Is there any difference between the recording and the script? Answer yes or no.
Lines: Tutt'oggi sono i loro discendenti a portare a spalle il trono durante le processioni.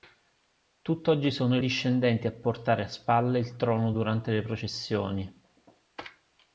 yes